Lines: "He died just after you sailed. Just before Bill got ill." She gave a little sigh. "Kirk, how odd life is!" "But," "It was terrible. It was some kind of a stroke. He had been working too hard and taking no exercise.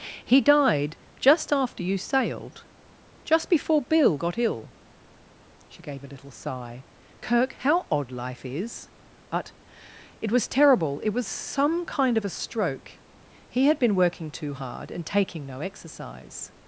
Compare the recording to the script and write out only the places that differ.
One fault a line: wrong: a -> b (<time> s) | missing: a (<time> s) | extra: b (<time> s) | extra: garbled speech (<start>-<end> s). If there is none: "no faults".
no faults